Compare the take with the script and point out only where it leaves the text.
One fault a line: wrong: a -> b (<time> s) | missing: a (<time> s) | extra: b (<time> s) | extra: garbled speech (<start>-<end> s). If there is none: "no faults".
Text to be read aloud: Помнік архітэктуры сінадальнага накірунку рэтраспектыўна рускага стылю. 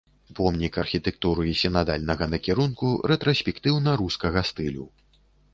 no faults